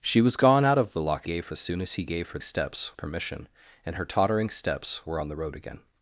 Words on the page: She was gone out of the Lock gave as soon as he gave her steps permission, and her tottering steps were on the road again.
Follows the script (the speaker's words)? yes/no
yes